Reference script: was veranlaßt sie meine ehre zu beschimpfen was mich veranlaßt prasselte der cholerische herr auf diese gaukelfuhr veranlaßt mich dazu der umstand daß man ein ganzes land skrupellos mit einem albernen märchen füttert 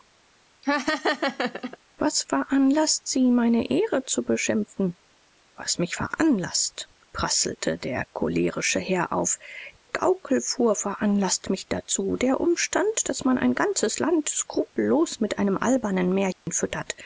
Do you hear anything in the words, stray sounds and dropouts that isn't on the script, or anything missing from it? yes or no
yes